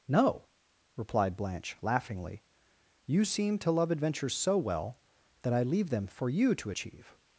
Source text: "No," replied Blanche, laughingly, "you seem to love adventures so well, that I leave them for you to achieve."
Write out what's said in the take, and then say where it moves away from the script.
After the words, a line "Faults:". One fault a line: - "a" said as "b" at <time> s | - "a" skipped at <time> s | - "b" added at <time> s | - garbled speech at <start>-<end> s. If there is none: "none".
"No," replied Blanche, laughingly, "you seem to love adventures so well, that I leave them for you to achieve."
Faults:
none